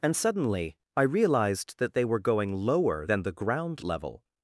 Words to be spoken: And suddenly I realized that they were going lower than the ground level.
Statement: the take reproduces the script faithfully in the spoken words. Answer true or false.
true